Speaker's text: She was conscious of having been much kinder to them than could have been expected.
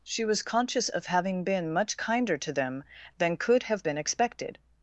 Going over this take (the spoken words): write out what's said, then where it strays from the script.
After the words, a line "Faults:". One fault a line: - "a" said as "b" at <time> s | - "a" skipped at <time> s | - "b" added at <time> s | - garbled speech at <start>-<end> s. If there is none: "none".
She was conscious of having been much kinder to them than could have been expected.
Faults:
none